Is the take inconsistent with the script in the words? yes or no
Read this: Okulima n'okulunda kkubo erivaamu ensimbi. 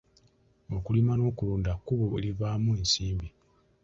no